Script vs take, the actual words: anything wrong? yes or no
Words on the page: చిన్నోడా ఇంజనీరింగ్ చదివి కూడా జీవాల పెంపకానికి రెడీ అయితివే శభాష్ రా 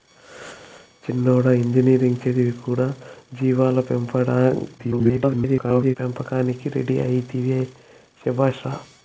yes